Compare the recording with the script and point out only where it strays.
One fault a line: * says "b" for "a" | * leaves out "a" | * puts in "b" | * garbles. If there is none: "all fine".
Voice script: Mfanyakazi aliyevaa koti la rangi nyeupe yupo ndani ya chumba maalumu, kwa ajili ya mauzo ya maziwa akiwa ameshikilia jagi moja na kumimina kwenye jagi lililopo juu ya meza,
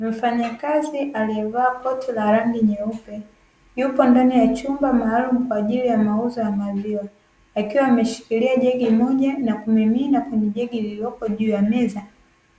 all fine